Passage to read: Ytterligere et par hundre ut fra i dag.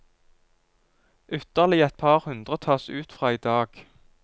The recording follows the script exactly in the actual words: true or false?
false